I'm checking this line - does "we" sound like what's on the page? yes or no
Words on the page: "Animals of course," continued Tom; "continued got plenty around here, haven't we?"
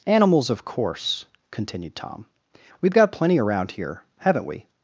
yes